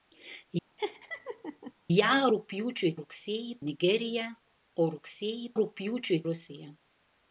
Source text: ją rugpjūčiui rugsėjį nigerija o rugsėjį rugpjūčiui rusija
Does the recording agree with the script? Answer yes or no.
yes